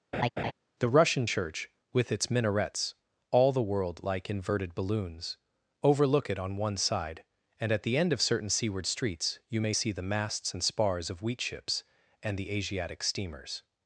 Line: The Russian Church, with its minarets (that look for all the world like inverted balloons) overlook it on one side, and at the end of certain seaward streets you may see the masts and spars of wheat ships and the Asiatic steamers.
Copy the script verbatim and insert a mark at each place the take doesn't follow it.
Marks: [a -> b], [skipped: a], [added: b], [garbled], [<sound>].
[laugh] The Russian Church, with its minarets [skipped: (that look for] all the world like inverted balloons) overlook it on one side, and at the end of certain seaward streets you may see the masts and spars of wheat ships and the Asiatic steamers.